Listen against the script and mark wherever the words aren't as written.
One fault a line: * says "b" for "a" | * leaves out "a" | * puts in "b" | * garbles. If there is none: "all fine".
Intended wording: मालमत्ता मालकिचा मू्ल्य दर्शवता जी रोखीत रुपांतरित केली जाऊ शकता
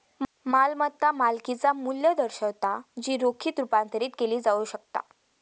all fine